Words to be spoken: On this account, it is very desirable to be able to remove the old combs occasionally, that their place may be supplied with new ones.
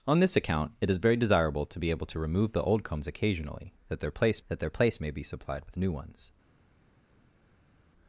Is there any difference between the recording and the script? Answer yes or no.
yes